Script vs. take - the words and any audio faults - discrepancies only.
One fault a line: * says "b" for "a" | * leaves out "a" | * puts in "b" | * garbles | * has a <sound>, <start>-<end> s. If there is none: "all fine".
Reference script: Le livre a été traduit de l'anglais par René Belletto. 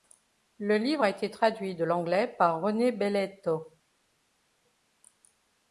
all fine